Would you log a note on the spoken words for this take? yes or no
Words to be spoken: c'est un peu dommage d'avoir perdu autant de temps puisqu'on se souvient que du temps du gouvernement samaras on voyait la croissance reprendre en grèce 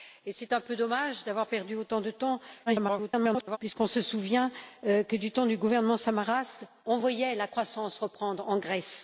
yes